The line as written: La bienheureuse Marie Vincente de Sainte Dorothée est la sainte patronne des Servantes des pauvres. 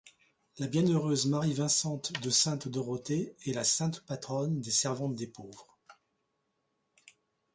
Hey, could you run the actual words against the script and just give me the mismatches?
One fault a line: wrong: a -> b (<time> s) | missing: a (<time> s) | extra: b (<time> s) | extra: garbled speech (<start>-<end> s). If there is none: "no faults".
no faults